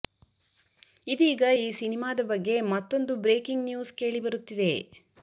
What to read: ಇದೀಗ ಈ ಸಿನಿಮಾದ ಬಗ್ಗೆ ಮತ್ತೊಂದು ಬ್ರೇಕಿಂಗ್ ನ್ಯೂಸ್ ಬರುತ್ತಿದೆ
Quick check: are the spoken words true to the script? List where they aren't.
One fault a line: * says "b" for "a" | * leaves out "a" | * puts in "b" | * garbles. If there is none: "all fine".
* puts in "ಕೇಳಿ"